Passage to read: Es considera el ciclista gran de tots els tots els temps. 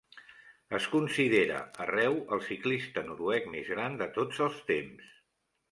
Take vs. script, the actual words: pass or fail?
fail